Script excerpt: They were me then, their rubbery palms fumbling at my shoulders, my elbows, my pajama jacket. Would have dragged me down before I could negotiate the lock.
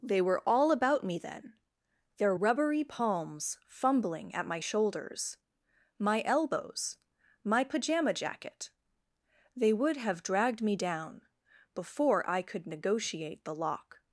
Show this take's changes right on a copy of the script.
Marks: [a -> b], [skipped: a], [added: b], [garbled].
They were [added: all about] me then, their rubbery palms fumbling at my shoulders, my elbows, my pajama jacket. [added: They] Would have dragged me down before I could negotiate the lock.